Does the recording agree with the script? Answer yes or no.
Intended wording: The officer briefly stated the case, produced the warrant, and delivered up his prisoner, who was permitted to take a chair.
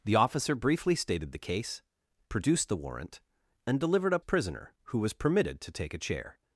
no